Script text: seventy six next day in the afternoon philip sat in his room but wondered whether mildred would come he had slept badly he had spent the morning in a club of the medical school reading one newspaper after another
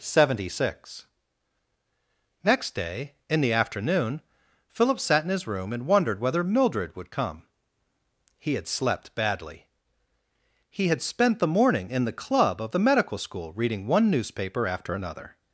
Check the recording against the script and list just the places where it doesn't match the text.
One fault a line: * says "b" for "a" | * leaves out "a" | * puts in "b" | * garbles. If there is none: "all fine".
* says "and" for "but"
* says "the" for "a"